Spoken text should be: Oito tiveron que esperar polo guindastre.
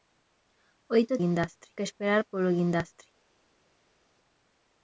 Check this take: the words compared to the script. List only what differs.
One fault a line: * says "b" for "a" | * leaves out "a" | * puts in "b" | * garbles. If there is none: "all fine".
* says "guindastre" for "tiveron"